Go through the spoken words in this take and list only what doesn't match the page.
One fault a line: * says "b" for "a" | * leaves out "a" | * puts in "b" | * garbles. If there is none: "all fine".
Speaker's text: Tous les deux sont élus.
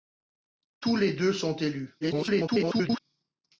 * garbles